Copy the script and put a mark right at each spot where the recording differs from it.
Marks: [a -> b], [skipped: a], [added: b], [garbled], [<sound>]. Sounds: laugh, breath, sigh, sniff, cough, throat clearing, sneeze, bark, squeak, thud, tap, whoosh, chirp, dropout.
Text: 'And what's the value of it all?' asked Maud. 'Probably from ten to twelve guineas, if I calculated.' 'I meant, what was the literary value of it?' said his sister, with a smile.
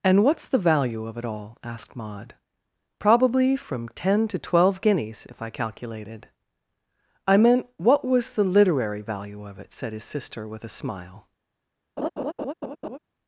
'And what's the value of it all?' asked Maud. 'Probably from ten to twelve guineas, if I calculated.' 'I meant, what was the literary value of it?' said his sister, with a smile. [laugh]